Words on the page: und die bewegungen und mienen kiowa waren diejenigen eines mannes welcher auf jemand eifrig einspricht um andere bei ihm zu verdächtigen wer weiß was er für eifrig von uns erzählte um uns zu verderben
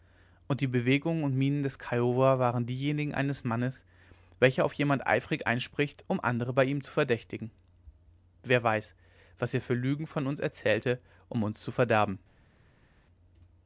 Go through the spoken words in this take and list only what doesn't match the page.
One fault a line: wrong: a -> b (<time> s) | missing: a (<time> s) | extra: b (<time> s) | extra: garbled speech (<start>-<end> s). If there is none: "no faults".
extra: des (1.6 s)
wrong: eifrig -> lügen (9.7 s)